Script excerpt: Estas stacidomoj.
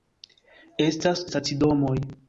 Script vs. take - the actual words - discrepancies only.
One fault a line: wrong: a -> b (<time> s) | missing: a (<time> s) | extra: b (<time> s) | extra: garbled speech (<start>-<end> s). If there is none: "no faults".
no faults